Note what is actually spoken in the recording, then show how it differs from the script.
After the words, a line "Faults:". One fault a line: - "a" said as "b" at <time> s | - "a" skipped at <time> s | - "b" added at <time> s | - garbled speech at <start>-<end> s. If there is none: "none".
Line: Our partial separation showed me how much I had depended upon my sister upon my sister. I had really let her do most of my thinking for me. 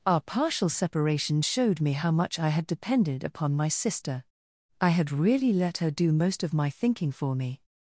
Our partial separation showed me how much I had depended upon my sister. I had really let her do most of my thinking for me.
Faults:
- "upon my sister" skipped at 4.2 s